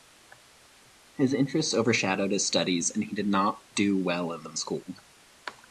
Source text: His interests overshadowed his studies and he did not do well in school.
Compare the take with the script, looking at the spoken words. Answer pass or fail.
fail